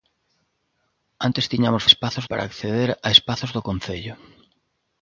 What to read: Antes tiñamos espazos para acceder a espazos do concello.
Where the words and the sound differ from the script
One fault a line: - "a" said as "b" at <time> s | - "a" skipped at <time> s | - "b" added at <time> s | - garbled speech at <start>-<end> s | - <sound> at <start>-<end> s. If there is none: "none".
none